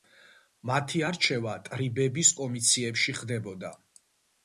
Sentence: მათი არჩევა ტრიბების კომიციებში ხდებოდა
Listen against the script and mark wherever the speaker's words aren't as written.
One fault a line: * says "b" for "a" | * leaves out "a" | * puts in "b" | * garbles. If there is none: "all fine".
all fine